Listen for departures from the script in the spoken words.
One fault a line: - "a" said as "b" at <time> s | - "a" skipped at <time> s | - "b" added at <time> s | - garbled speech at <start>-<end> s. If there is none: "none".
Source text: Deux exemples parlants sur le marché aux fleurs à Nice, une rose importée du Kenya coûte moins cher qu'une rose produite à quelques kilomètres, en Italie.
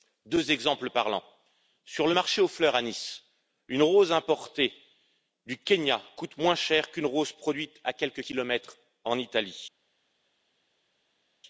none